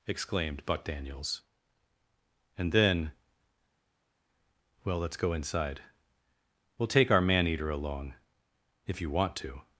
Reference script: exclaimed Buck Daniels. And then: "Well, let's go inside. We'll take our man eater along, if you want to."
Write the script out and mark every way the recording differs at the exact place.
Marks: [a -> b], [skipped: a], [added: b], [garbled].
exclaimed Buck Daniels. And then: "Well, let's go inside. We'll take our man eater along, if you want to."